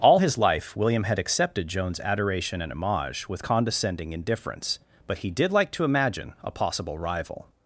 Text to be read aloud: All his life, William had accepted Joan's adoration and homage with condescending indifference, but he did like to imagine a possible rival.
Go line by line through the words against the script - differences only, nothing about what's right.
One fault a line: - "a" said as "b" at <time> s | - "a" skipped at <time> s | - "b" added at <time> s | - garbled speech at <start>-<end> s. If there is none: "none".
none